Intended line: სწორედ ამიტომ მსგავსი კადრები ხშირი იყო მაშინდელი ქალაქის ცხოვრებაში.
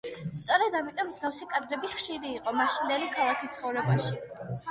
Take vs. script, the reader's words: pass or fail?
pass